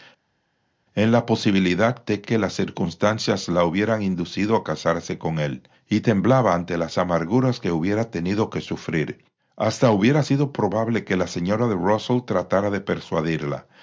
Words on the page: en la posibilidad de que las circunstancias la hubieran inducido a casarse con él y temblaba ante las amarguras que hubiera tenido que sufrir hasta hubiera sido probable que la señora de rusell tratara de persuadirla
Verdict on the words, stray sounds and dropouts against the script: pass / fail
pass